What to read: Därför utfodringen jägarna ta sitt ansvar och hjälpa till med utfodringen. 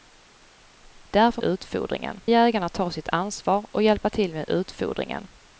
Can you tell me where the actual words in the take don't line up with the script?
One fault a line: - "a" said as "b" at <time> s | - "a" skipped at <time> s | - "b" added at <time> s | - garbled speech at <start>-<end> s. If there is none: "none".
none